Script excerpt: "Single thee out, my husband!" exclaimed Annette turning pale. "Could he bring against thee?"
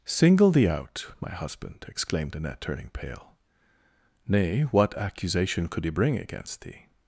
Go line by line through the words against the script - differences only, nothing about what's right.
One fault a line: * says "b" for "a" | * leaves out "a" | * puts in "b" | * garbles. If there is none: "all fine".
* puts in "Nay what accusation"